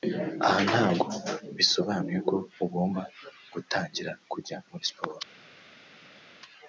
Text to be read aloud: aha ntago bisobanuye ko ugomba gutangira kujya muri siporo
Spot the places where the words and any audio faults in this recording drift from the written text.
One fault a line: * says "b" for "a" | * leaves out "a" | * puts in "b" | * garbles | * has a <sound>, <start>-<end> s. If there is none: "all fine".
all fine